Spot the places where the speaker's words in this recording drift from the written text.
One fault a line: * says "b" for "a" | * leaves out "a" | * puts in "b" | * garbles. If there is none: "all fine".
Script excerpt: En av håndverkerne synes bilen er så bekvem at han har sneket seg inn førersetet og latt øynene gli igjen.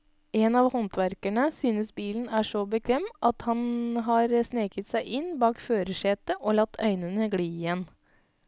* puts in "bak"